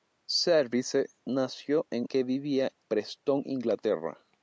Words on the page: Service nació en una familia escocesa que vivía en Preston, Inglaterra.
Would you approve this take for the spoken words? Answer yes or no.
no